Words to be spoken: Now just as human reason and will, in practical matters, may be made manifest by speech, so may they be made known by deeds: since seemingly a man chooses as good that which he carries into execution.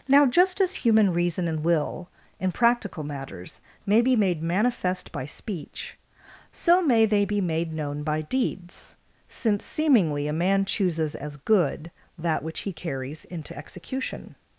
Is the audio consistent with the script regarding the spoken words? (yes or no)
yes